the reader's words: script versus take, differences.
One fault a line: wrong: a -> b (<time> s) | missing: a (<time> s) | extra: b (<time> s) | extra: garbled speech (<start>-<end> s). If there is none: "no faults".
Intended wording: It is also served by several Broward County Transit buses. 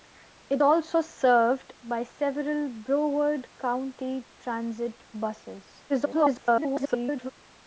missing: is (0.6 s)
extra: garbled speech (5.9-7.3 s)